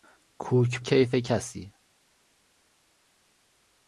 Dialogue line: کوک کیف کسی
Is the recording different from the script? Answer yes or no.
no